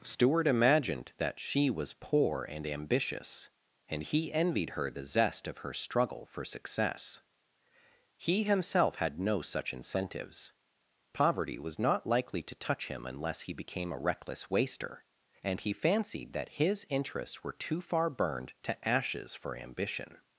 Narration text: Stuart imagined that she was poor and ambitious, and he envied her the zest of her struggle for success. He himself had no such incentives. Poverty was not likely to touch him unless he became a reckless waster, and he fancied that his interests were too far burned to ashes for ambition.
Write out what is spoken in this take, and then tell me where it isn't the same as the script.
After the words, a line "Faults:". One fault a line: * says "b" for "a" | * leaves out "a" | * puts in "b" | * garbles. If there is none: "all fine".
Stuart imagined that she was poor and ambitious, and he envied her the zest of her struggle for success. He himself had no such incentives. Poverty was not likely to touch him unless he became a reckless waster, and he fancied that his interests were too far burned to ashes for ambition.
Faults:
all fine